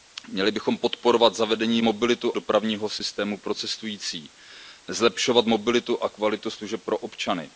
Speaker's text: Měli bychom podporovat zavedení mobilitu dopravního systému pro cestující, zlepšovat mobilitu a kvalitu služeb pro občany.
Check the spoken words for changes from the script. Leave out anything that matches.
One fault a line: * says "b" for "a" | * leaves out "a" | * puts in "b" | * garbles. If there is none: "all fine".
all fine